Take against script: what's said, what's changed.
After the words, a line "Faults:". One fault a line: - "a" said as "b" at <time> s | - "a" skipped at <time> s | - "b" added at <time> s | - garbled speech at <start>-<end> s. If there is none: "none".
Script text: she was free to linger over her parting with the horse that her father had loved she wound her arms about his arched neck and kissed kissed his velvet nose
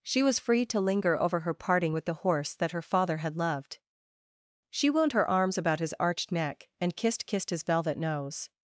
she was free to linger over her parting with the horse that her father had loved she wound her arms about his arched neck and kissed kissed his velvet nose
Faults:
none